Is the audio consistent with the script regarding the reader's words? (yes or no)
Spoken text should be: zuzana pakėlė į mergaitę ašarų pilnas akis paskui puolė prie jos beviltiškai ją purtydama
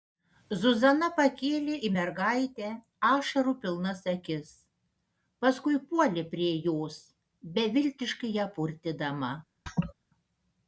yes